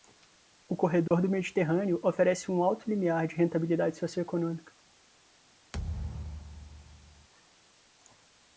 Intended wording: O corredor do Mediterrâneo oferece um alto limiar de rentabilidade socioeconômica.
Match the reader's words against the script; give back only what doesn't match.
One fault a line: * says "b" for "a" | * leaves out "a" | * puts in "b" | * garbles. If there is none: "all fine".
all fine